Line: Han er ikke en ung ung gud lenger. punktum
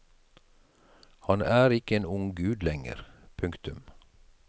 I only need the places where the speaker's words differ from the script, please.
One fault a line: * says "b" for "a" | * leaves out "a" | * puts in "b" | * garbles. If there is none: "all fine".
* leaves out "ung"